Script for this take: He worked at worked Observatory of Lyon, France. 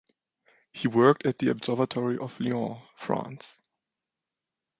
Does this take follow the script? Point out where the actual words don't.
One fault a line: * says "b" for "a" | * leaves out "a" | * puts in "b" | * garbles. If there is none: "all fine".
* says "the" for "worked"